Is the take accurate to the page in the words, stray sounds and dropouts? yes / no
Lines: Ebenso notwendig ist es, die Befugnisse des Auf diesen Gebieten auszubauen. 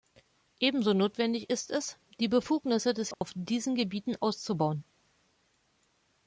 no